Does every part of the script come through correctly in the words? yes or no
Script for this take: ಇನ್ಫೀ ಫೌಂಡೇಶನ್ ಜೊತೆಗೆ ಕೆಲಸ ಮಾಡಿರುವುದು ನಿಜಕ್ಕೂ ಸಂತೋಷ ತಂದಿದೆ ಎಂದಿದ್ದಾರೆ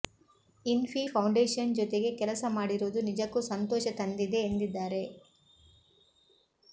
yes